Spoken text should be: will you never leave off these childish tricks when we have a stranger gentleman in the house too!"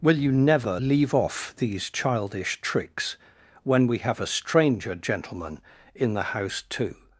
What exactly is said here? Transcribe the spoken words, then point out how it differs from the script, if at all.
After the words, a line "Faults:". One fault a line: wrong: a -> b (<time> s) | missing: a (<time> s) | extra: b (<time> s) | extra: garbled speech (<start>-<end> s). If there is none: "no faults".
will you never leave off these childish tricks when we have a stranger gentleman in the house too!"
Faults:
no faults